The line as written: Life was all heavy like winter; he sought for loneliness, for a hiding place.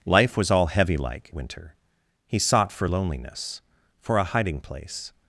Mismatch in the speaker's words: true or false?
false